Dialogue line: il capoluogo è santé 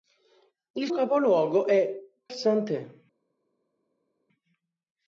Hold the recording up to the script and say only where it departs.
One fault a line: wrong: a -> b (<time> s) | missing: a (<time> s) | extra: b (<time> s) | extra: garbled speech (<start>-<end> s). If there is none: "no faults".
no faults